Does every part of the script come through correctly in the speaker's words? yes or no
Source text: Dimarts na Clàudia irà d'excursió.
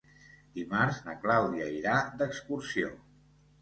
yes